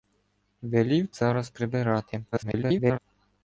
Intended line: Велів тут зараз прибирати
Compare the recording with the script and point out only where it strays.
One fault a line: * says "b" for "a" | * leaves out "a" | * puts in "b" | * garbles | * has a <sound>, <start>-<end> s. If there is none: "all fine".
* leaves out "тут"
* garbles